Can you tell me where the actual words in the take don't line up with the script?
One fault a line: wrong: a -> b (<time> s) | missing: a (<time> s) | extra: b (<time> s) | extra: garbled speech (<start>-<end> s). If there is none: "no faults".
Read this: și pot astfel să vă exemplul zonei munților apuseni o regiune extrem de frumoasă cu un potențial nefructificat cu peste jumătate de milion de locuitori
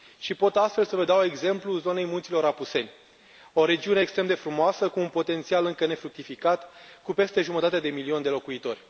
extra: dau (1.0 s)
extra: încă (5.7 s)